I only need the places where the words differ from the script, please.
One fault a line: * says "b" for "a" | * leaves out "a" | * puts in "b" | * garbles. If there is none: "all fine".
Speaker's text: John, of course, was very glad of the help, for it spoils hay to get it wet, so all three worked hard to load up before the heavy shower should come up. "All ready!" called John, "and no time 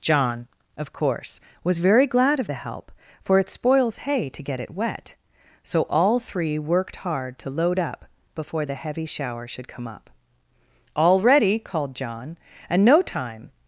all fine